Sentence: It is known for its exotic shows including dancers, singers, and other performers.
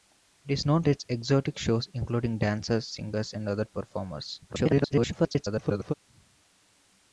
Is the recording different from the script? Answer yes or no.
yes